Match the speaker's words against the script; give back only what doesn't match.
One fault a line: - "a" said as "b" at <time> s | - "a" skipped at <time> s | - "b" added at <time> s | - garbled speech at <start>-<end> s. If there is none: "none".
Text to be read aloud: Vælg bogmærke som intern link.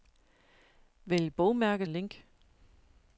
- "som intern" skipped at 1.9 s